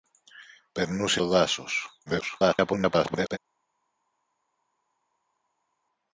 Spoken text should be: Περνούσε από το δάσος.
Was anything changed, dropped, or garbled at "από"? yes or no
yes